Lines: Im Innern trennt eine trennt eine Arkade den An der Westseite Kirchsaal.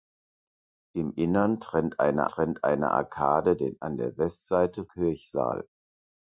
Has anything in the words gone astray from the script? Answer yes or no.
no